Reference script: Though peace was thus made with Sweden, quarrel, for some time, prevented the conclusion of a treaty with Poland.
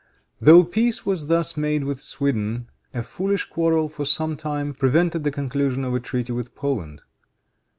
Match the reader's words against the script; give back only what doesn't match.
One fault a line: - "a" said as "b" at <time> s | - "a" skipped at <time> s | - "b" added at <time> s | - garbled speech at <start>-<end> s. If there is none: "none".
- "a foolish" added at 2.9 s